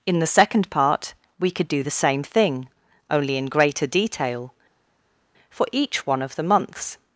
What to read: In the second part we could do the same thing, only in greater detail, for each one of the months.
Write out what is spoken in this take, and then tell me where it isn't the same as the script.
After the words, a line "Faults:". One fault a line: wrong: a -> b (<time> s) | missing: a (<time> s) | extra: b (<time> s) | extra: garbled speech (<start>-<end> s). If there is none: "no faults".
In the second part we could do the same thing, only in greater detail, for each one of the months.
Faults:
no faults